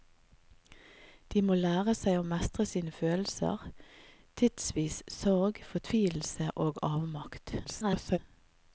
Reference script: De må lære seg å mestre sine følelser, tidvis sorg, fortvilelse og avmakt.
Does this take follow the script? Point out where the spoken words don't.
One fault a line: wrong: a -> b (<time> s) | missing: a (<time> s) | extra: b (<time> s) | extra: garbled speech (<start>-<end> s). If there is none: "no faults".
extra: garbled speech (7.6-8.2 s)